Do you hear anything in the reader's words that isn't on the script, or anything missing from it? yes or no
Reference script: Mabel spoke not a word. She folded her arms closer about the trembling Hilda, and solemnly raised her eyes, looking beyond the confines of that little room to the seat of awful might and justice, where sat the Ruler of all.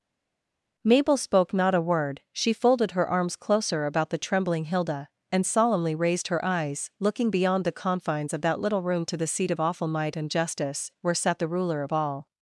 no